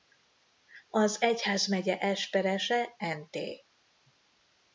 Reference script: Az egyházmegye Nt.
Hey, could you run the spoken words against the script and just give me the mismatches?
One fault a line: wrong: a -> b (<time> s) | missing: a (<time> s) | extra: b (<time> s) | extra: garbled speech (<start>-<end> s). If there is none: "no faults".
extra: esperese (2.0 s)